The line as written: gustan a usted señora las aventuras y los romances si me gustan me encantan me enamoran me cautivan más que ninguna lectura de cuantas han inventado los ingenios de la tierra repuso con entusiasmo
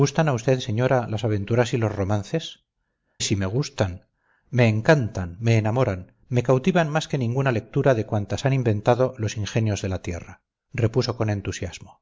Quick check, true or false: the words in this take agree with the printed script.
true